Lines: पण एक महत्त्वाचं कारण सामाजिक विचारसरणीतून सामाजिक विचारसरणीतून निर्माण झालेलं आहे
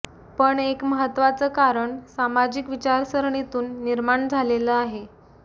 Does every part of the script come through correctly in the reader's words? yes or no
no